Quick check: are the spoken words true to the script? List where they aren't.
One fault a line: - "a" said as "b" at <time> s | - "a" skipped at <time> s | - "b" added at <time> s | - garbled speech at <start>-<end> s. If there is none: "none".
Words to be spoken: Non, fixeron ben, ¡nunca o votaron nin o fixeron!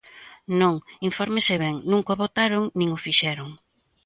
- "fixeron" said as "infórmese" at 1.1 s